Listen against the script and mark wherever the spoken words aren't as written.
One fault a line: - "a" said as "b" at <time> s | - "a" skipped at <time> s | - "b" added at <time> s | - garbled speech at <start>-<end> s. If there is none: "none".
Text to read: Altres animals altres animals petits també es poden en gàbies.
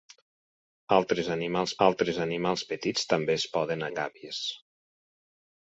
none